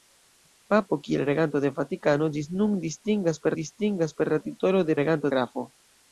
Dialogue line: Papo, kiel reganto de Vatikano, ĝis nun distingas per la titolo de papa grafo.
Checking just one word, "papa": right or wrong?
wrong